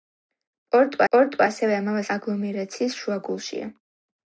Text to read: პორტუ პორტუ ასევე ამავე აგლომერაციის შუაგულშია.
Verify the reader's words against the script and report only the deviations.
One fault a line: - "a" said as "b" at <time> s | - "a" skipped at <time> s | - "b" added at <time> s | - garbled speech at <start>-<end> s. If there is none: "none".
none